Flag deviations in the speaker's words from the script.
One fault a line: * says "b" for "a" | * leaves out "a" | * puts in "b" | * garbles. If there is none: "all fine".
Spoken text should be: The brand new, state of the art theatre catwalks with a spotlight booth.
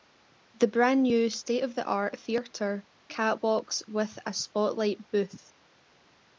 all fine